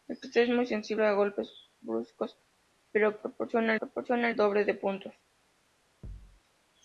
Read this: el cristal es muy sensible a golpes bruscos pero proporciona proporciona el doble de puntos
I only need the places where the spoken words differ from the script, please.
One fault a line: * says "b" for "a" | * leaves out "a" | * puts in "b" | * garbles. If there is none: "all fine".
all fine